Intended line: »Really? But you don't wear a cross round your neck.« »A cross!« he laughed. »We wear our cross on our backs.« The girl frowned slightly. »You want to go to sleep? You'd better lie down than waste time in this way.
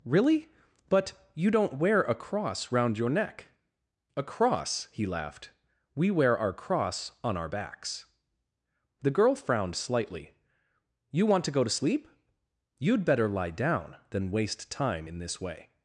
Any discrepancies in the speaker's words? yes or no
no